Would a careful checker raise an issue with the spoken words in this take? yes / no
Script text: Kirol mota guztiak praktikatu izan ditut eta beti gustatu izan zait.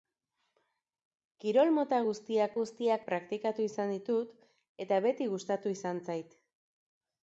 yes